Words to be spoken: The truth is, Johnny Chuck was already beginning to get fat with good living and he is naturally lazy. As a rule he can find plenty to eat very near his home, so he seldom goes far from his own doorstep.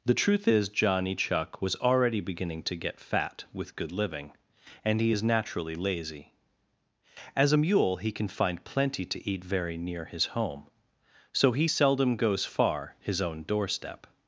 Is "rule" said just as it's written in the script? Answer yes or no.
no